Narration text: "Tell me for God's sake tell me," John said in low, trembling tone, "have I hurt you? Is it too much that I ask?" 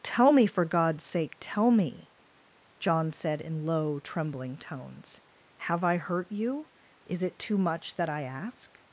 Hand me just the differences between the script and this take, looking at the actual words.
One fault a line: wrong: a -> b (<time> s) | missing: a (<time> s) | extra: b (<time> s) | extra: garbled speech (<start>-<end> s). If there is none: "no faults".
wrong: tone -> tones (4.6 s)